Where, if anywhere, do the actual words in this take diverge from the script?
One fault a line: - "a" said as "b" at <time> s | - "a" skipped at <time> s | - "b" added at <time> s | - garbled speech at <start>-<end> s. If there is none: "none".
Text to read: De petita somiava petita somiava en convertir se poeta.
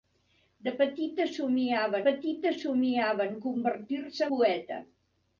none